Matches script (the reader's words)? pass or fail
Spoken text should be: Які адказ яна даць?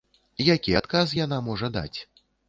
fail